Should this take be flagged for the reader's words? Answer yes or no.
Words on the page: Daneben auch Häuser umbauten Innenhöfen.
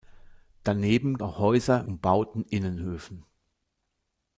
no